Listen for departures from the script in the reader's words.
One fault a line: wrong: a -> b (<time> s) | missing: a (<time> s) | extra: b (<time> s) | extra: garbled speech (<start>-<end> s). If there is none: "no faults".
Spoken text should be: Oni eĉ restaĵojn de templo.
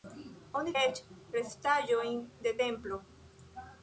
no faults